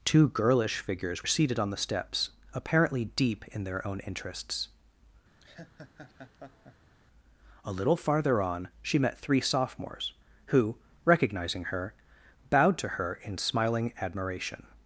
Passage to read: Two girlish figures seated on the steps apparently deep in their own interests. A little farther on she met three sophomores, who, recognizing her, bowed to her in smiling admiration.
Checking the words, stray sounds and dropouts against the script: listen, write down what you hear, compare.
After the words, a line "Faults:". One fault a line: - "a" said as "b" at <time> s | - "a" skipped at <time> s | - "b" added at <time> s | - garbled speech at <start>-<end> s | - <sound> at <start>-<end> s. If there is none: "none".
Two girlish figures seated on the steps apparently deep in their own interests. A little farther on she met three sophomores, who, recognizing her, bowed to her in smiling admiration.
Faults:
- laugh at 5.4-7.0 s